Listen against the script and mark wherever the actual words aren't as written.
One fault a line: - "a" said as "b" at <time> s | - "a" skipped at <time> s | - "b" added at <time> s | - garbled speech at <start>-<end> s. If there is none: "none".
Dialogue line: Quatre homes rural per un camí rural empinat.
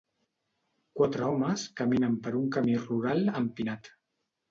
- "rural" said as "caminen" at 1.8 s